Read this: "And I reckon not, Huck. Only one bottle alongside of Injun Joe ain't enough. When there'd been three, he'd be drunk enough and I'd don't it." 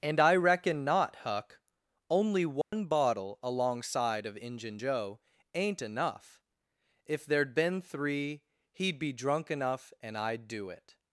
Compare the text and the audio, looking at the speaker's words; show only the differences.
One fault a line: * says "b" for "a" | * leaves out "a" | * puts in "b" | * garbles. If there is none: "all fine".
* says "If" for "When"
* says "do" for "don't"